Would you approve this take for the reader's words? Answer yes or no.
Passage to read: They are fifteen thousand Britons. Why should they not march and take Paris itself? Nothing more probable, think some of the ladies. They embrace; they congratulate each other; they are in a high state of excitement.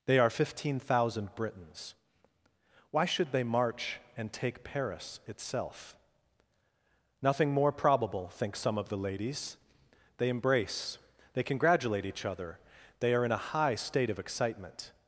no